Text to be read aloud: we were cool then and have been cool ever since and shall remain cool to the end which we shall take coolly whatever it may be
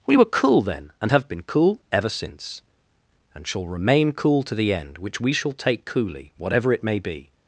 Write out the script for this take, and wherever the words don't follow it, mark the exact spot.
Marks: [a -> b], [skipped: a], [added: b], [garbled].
we were cool then and have been cool ever since and shall remain cool to the end which we shall take coolly whatever it may be